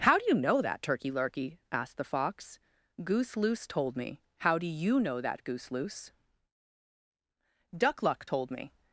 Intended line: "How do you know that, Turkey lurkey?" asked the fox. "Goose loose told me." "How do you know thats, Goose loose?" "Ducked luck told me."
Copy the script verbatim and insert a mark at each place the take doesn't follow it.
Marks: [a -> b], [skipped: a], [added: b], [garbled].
"How do you know that, Turkey lurkey?" asked the fox. "Goose loose told me." "How do you know [thats, -> that] Goose loose?" ["Ducked -> Duck] luck told me."